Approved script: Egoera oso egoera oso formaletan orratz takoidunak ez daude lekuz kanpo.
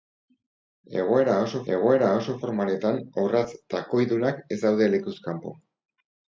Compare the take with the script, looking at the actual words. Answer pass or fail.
pass